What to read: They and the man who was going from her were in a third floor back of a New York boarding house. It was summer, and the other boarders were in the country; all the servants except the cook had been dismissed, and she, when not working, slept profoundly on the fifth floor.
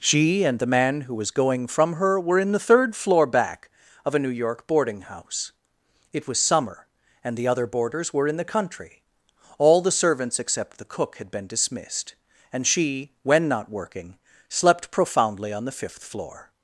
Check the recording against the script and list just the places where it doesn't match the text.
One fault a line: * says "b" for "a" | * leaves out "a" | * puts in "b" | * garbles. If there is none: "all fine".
* says "She" for "They"
* says "the" for "a"